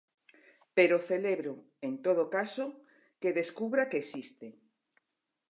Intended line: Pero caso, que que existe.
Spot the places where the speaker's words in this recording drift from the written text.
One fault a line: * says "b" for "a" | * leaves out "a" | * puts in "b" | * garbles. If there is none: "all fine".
* puts in "celebro en todo"
* puts in "descubra"